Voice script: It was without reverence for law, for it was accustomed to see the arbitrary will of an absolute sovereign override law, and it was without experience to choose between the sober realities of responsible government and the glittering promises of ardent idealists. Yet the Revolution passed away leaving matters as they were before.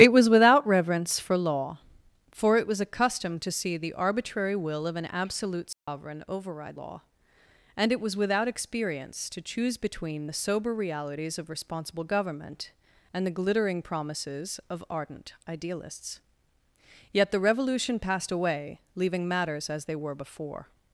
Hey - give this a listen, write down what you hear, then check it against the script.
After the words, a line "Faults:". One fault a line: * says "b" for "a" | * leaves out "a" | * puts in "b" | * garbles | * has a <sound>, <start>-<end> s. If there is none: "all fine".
It was without reverence for law, for it was accustomed to see the arbitrary will of an absolute sovereign override law, and it was without experience to choose between the sober realities of responsible government and the glittering promises of ardent idealists. Yet the Revolution passed away leaving matters as they were before.
Faults:
* has a dropout, 5.7-5.9 s